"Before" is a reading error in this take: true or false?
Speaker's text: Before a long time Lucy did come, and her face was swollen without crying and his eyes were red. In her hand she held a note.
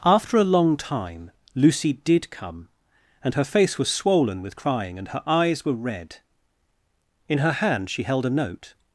true